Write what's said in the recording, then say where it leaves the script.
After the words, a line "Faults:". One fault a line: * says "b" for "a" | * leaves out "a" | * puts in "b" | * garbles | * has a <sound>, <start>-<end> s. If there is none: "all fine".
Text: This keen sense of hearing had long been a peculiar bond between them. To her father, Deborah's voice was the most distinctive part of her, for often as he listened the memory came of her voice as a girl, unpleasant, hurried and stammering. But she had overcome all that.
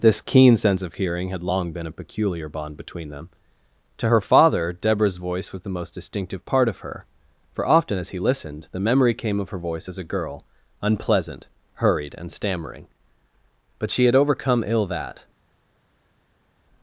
This keen sense of hearing had long been a peculiar bond between them. To her father, Deborah's voice was the most distinctive part of her, for often as he listened the memory came of her voice as a girl, unpleasant, hurried and stammering. But she had overcome ill that.
Faults:
* says "ill" for "all"